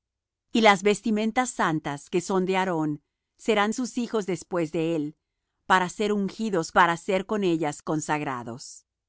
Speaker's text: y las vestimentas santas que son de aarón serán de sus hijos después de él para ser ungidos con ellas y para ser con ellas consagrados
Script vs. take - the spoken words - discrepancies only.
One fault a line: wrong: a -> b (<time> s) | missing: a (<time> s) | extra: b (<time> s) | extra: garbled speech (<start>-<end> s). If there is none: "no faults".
missing: de (3.7 s)
missing: con ellas y (6.7 s)